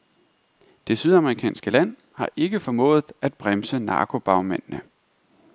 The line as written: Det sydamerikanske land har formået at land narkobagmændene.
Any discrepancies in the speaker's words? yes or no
yes